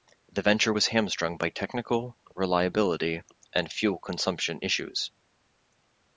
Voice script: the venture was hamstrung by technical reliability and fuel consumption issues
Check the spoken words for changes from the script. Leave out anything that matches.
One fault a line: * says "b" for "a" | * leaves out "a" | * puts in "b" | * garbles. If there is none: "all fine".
all fine